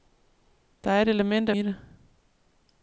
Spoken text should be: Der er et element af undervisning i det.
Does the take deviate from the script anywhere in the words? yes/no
yes